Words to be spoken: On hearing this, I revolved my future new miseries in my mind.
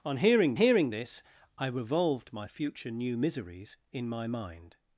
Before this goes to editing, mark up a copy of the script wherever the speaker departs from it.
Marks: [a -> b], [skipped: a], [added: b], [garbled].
On hearing [added: hearing] this, I revolved my future new miseries in my mind.